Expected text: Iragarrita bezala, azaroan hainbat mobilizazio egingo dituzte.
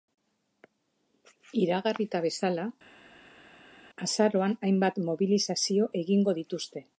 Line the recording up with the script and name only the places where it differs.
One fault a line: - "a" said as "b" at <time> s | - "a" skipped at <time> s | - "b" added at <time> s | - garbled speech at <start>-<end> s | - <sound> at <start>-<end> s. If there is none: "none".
none